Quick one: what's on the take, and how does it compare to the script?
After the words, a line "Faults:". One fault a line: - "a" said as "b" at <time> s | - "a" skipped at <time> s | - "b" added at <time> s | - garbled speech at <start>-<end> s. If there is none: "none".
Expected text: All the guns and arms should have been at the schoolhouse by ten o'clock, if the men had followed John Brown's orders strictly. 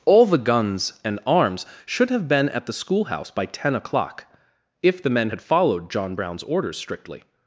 All the guns and arms should have been at the schoolhouse by ten o'clock, if the men had followed John Brown's orders strictly.
Faults:
none